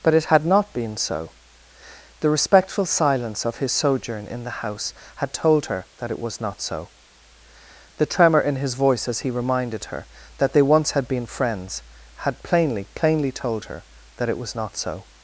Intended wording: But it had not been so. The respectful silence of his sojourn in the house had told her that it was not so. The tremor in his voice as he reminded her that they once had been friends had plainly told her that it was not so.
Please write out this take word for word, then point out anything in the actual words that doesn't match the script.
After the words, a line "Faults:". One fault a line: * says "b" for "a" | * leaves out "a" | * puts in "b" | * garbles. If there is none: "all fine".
But it had not been so. The respectful silence of his sojourn in the house had told her that it was not so. The tremor in his voice as he reminded her that they once had been friends had plainly plainly told her that it was not so.
Faults:
* puts in "plainly"